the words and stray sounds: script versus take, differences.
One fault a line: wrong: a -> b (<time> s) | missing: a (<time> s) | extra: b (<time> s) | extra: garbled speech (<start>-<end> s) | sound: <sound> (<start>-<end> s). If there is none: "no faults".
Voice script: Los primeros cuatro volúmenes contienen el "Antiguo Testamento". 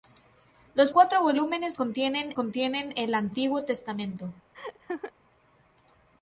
missing: primeros (0.9 s)
extra: contienen (2.3 s)
sound: laugh (4.5-5.1 s)